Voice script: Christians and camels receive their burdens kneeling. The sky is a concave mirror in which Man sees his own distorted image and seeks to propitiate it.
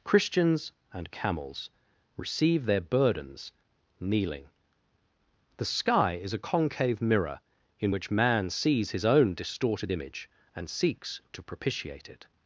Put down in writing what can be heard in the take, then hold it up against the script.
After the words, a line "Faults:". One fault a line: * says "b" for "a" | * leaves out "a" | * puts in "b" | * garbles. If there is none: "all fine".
Christians and camels receive their burdens kneeling. The sky is a concave mirror in which Man sees his own distorted image and seeks to propitiate it.
Faults:
all fine